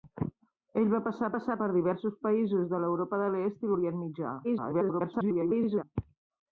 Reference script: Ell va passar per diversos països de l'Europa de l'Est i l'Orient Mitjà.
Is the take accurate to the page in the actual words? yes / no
no